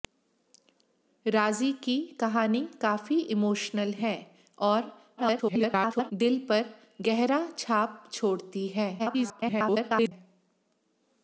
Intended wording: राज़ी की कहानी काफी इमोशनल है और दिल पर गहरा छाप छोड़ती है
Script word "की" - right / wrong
right